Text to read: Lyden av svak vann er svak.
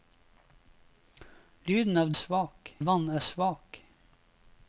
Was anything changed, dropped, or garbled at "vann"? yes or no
no